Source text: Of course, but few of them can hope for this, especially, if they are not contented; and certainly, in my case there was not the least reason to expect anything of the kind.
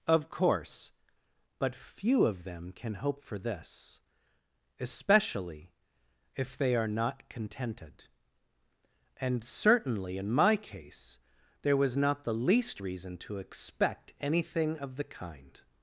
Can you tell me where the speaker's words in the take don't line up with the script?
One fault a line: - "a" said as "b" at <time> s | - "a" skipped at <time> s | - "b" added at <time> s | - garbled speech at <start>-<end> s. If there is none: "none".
none